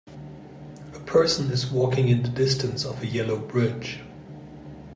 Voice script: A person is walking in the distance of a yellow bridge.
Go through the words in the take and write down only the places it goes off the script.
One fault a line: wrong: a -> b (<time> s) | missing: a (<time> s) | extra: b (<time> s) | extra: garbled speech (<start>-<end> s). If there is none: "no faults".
no faults